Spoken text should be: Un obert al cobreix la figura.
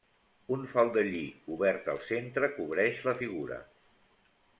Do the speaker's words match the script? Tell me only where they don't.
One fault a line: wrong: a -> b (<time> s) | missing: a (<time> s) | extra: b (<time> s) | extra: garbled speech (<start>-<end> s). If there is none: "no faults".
extra: faldellí (0.7 s)
extra: centre (2.1 s)